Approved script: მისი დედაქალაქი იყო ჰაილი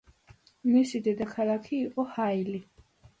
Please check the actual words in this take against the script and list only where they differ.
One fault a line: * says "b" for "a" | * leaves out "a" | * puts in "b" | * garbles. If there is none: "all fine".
all fine